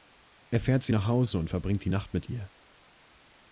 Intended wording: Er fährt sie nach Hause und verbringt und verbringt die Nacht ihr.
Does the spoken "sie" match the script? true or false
true